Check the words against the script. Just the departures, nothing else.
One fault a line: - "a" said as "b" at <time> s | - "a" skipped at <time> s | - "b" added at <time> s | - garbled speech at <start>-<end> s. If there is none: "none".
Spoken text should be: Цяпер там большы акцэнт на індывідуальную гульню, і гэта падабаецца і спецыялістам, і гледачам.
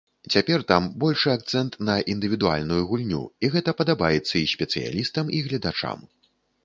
none